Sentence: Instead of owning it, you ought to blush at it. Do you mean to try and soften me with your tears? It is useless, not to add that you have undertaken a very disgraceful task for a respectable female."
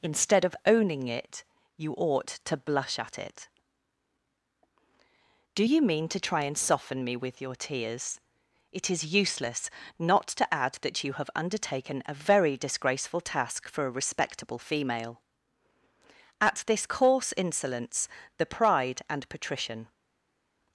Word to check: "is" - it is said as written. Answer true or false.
true